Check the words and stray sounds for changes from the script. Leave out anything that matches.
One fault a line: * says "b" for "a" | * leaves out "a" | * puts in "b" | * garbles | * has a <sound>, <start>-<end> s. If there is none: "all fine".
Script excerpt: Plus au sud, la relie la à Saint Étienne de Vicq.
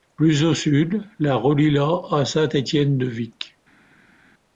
all fine